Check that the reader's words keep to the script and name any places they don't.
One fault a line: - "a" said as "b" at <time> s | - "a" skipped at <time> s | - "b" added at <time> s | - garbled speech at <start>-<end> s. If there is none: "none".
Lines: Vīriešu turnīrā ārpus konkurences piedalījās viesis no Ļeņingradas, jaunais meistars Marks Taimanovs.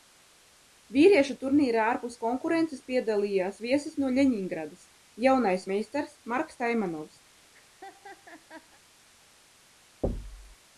none